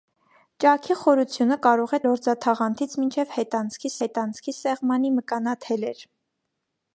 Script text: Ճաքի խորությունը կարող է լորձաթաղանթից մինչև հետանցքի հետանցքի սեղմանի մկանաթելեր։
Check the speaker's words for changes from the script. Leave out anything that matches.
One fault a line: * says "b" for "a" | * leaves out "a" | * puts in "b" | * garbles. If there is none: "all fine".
all fine